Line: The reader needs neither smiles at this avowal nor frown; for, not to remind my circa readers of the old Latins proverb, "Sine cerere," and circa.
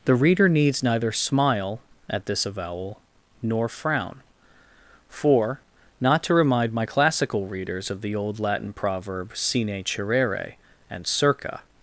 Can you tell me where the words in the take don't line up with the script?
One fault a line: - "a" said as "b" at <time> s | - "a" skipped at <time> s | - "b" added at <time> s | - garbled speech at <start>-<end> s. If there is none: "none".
- "smiles" said as "smile" at 1.1 s
- "circa" said as "classical" at 6.8 s
- "Latins" said as "Latin" at 8.4 s